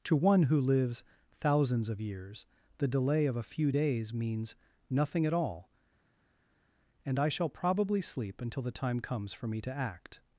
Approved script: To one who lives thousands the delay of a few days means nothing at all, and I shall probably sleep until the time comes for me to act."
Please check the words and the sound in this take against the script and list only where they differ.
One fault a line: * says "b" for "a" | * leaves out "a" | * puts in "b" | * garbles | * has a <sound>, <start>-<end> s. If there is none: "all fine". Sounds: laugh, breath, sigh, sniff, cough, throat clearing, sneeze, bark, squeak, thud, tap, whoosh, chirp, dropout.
* puts in "of years"